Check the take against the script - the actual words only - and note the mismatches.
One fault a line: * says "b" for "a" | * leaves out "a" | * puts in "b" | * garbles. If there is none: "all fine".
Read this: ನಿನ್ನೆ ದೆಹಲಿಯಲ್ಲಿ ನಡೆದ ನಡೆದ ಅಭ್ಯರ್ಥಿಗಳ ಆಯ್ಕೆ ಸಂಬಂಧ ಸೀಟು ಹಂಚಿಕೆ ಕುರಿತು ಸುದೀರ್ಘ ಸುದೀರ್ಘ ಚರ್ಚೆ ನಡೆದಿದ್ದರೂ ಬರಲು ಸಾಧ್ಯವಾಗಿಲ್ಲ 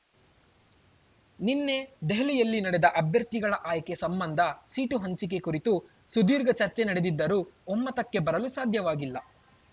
* leaves out "ನಡೆದ"
* leaves out "ಸುದೀರ್ಘ"
* puts in "ಒಮ್ಮತಕ್ಕೆ"